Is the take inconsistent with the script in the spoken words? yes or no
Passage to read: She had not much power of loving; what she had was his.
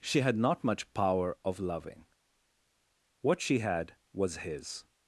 no